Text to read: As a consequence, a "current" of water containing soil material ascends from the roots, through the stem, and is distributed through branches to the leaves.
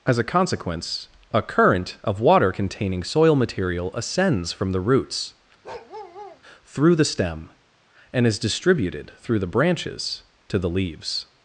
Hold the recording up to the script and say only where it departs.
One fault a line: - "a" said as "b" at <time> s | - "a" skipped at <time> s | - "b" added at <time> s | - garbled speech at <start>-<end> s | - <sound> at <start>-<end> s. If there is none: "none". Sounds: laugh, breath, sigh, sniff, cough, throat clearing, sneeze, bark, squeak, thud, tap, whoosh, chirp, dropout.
- bark at 5.6-6.4 s
- "the" added at 9.4 s